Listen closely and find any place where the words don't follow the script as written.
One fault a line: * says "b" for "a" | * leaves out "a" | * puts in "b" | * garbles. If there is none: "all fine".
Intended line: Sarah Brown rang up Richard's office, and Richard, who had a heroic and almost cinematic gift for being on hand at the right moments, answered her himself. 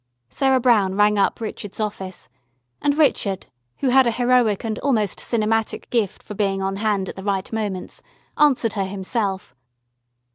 all fine